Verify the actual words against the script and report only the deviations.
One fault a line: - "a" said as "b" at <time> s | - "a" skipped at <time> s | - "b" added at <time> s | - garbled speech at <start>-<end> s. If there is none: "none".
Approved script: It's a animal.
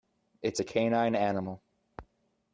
- "canine" added at 0.6 s